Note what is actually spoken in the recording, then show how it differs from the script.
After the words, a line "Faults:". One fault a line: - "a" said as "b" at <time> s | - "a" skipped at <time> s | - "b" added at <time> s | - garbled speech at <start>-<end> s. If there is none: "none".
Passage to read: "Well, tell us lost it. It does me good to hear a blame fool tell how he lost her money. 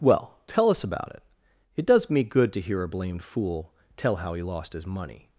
"Well, tell us about it. It does me good to hear a blamed fool tell how he lost his money.
Faults:
- "lost" said as "about" at 0.8 s
- "blame" said as "blamed" at 2.9 s
- "her" said as "his" at 4.7 s